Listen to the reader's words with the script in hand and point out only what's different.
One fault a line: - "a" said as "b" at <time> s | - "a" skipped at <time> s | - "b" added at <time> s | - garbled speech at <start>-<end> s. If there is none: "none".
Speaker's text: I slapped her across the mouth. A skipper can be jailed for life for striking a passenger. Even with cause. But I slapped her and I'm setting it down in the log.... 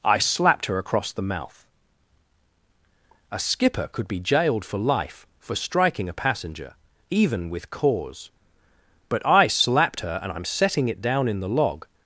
- "can" said as "could" at 3.9 s